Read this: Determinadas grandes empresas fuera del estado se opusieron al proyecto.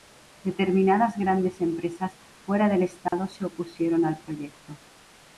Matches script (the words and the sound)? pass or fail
fail